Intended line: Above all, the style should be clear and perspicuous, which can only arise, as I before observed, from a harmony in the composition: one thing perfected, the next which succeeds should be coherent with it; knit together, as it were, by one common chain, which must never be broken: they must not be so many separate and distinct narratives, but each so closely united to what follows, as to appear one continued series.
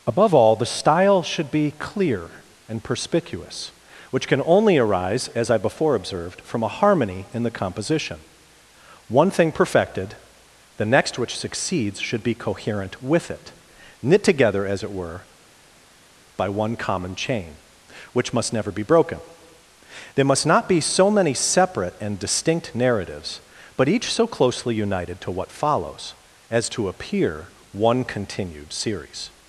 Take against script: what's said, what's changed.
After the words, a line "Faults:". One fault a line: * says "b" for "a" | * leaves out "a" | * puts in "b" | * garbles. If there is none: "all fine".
Above all, the style should be clear and perspicuous, which can only arise, as I before observed, from a harmony in the composition: one thing perfected, the next which succeeds should be coherent with it; knit together, as it were, by one common chain, which must never be broken: there must not be so many separate and distinct narratives, but each so closely united to what follows, as to appear one continued series.
Faults:
* says "there" for "they"